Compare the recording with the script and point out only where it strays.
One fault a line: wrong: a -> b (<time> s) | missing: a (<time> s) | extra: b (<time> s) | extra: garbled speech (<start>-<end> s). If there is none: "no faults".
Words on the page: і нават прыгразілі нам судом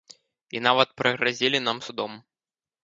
no faults